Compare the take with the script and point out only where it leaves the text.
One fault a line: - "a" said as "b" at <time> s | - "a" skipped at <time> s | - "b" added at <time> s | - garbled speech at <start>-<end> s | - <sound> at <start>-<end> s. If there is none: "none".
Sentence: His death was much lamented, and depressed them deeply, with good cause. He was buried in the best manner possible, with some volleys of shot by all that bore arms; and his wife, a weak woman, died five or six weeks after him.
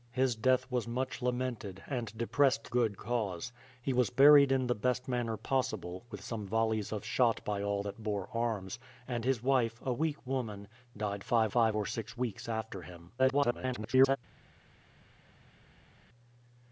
- "them deeply with" skipped at 2.7 s
- "five" added at 11.5 s
- garbled speech at 13.2-14.2 s